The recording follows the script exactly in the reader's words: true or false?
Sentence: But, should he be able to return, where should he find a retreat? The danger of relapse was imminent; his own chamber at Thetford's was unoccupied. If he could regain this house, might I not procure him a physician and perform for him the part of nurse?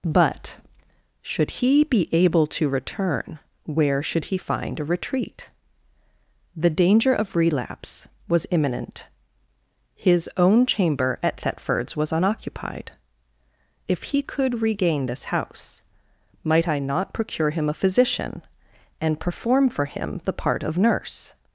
true